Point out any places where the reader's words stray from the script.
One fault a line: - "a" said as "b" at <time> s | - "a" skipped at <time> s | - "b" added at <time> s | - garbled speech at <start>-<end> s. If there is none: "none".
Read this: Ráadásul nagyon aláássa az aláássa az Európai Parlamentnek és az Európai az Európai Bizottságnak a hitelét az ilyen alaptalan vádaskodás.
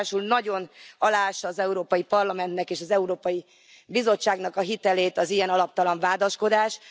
- "aláássa az" skipped at 1.6 s
- "az Európai" skipped at 3.5 s